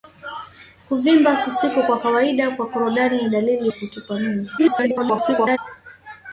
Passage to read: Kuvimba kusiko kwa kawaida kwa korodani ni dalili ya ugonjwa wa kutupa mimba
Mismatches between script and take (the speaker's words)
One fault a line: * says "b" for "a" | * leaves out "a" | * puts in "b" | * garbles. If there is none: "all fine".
* leaves out "ya ugonjwa"
* garbles